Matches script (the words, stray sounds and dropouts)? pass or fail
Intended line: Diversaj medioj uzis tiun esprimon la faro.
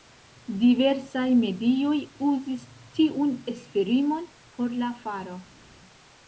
fail